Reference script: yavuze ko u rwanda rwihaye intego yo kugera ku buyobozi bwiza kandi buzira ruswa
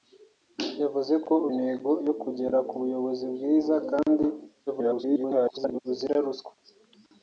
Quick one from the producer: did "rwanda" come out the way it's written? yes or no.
no